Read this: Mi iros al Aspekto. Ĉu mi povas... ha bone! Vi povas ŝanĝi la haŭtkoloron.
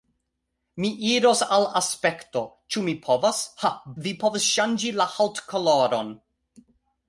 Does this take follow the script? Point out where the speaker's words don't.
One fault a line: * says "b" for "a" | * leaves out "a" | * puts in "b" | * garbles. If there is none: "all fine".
* leaves out "bone"